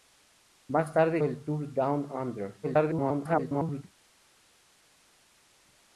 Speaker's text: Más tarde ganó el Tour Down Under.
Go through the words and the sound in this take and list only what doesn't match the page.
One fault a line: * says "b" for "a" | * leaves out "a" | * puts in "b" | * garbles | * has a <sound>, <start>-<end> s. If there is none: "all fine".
* leaves out "ganó"
* garbles